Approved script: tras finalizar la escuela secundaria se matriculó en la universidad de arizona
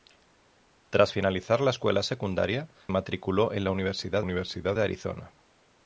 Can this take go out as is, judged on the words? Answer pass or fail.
fail